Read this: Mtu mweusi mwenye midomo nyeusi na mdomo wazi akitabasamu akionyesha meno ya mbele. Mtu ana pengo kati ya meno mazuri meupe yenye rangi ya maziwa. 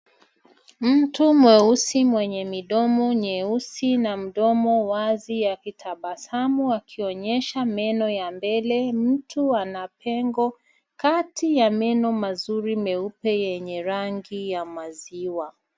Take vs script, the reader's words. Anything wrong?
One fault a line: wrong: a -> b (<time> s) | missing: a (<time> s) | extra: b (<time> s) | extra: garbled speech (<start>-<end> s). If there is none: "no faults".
no faults